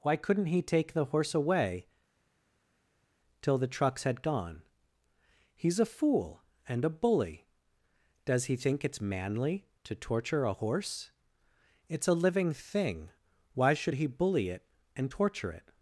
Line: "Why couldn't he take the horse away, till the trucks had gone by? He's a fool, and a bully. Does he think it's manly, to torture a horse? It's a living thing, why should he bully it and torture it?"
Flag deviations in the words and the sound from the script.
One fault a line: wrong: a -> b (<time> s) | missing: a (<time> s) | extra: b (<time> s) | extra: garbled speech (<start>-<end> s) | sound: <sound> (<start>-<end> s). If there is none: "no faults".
missing: by (4.6 s)